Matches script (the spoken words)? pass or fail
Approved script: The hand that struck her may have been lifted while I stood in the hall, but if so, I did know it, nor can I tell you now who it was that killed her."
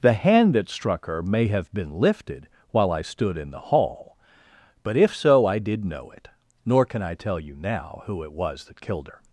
pass